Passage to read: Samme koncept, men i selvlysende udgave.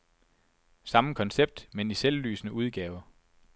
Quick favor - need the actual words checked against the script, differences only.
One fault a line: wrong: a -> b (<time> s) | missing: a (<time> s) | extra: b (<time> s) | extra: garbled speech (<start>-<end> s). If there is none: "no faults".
no faults